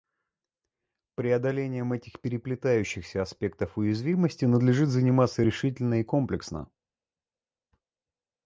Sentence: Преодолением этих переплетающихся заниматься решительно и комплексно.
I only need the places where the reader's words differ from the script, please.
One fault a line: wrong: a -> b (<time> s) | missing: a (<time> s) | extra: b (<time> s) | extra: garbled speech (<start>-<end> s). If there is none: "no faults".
extra: аспектов уязвимости надлежит (3.2 s)